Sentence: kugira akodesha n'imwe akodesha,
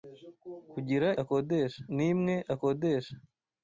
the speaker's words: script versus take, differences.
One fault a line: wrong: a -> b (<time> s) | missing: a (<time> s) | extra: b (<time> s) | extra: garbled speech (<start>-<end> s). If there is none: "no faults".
no faults